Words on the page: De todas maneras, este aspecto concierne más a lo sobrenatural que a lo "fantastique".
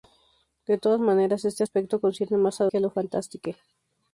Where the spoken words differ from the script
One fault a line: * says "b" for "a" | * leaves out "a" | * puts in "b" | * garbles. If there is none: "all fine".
* leaves out "lo sobrenatural"